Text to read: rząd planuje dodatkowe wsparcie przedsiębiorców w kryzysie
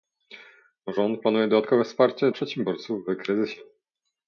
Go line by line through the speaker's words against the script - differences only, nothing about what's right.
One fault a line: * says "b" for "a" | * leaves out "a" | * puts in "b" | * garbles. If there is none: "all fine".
all fine